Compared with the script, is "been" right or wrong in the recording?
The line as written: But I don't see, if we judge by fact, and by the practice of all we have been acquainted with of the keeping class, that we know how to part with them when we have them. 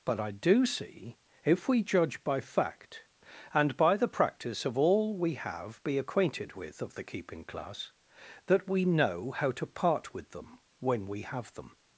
wrong